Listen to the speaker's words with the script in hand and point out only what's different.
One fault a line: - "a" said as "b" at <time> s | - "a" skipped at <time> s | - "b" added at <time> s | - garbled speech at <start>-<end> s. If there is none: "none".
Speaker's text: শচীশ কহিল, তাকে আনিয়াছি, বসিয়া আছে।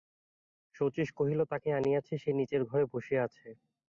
- "সে নীচের ঘরে" added at 2.2 s